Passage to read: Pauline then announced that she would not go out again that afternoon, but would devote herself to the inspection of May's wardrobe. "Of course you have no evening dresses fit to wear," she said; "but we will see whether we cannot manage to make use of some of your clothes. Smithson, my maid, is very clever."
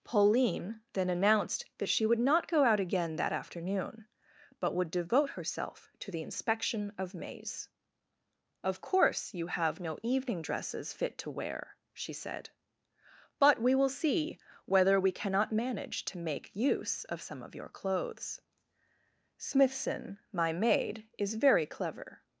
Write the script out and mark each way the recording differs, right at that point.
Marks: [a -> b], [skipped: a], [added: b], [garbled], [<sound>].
Pauline then announced that she would not go out again that afternoon, but would devote herself to the inspection of May's [skipped: wardrobe.] "Of course you have no evening dresses fit to wear," she said; "but we will see whether we cannot manage to make use of some of your clothes. Smithson, my maid, is very clever."